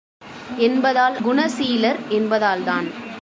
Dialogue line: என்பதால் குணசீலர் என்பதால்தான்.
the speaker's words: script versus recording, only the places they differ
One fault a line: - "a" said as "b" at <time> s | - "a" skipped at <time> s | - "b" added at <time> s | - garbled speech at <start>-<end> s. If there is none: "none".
none